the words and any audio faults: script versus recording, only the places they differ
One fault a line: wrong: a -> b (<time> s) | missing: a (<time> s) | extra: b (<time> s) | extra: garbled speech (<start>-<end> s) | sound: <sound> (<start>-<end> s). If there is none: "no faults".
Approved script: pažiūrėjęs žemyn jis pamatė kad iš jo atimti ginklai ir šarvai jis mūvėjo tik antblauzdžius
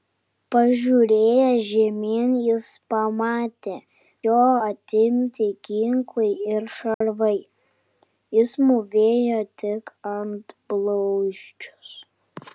missing: kad iš (3.7 s)
sound: dropout (6.9-7.0 s)